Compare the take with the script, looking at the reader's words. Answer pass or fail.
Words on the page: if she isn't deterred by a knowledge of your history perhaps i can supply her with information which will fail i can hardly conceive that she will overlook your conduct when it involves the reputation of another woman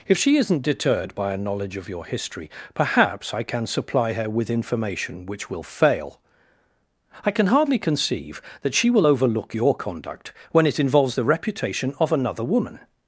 pass